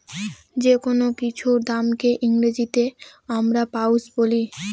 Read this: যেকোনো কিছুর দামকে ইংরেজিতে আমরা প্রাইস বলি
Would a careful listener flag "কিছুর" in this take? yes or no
no